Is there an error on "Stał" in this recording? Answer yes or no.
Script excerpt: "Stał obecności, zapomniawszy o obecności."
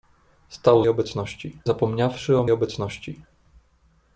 no